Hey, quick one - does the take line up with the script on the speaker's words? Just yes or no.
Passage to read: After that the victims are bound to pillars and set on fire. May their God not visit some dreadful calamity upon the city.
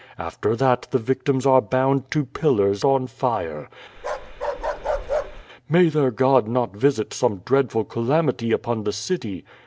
no